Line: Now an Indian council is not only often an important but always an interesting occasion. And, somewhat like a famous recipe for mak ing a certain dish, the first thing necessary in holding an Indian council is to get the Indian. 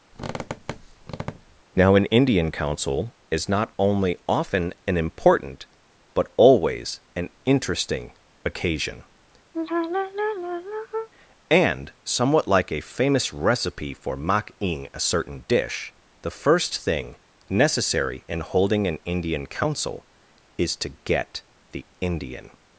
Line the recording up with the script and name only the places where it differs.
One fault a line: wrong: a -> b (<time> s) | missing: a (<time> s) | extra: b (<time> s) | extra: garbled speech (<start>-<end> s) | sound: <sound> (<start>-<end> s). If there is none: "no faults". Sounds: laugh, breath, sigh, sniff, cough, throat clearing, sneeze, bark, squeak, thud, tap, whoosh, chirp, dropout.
sound: squeak (0.1-1.6 s)
sound: sigh (9.5-11.1 s)